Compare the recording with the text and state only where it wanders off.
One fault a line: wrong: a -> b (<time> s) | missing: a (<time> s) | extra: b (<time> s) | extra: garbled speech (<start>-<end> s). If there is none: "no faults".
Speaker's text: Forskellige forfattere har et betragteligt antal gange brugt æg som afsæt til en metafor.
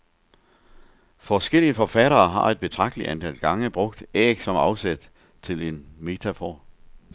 no faults